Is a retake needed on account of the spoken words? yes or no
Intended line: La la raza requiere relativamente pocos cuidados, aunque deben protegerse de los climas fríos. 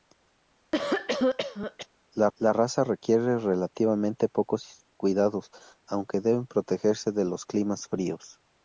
no